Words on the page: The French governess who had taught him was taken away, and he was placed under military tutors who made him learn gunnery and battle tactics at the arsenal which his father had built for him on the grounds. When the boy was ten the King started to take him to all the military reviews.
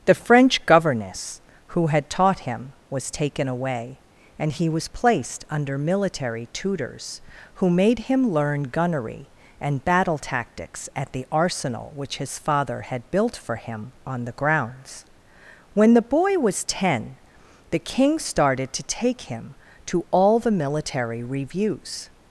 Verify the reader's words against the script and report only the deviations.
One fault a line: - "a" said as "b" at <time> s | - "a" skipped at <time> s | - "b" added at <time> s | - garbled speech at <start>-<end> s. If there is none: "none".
none